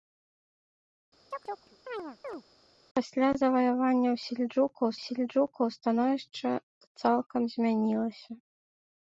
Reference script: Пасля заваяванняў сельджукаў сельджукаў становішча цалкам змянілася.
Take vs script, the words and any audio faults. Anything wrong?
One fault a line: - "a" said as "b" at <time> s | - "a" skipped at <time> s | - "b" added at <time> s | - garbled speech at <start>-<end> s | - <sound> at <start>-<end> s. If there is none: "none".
- chirp at 1.3-2.4 s